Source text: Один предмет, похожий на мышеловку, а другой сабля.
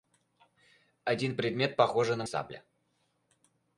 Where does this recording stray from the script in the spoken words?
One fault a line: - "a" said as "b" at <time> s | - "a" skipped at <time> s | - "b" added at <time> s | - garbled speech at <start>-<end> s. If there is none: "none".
- "мышеловку а другой" skipped at 2.2 s